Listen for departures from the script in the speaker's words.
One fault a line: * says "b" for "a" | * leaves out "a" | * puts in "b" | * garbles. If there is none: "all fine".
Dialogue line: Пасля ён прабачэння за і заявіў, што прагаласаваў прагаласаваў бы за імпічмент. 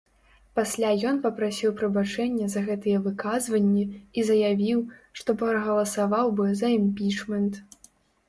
* puts in "папрасіў"
* puts in "гэтыя выказванні"
* leaves out "прагаласаваў"